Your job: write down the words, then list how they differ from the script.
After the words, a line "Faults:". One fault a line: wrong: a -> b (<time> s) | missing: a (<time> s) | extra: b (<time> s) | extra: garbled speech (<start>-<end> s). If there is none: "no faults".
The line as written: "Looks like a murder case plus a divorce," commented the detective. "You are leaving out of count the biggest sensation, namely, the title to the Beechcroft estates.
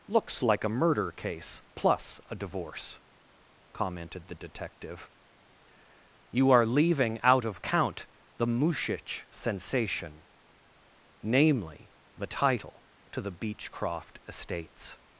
"Looks like a murder case plus a divorce," commented the detective. "You are leaving out of count the mushich sensation, namely, the title to the Beechcroft estates.
Faults:
wrong: biggest -> mushich (8.5 s)